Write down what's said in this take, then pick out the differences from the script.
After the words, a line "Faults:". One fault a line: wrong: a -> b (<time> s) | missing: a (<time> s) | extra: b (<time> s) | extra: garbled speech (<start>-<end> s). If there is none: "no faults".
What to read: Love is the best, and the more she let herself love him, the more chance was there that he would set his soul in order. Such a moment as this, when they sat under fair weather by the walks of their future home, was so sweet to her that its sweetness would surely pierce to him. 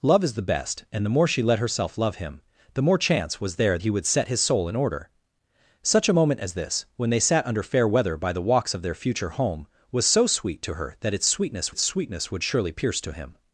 Love is the best, and the more she let herself love him, the more chance was there he would set his soul in order. Such a moment as this, when they sat under fair weather by the walks of their future home, was so sweet to her that its sweetness its sweetness would surely pierce to him.
Faults:
missing: that (3.8 s)
extra: its sweetness (11.7 s)